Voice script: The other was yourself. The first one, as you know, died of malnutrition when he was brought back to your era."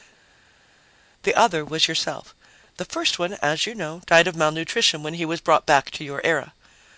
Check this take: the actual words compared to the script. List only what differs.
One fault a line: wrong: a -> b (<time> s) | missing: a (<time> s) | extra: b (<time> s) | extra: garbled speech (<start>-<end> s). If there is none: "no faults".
no faults